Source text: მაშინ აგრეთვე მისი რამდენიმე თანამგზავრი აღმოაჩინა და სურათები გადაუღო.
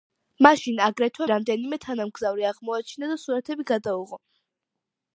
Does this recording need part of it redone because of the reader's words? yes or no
yes